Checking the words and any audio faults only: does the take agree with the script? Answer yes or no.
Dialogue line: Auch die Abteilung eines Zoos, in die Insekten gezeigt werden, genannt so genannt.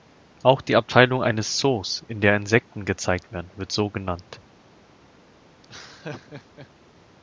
no